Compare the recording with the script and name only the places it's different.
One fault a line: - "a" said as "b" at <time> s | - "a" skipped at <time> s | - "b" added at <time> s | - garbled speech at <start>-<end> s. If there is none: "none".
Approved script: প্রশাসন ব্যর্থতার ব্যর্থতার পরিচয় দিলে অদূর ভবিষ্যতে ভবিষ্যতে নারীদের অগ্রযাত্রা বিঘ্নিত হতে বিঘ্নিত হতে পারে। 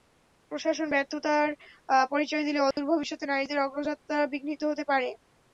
- "ব্যর্থতার" skipped at 1.5 s
- "ভবিষ্যতে" skipped at 3.2 s
- "বিঘ্নিত হতে" skipped at 4.8 s